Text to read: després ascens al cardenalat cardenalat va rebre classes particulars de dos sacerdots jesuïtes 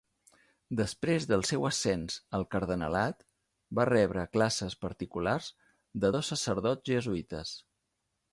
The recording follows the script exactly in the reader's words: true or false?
false